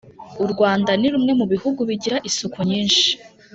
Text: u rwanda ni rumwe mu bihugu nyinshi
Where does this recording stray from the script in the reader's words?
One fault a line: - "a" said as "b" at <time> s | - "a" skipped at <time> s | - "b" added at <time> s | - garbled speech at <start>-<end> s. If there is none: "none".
- "bigira isuku" added at 1.9 s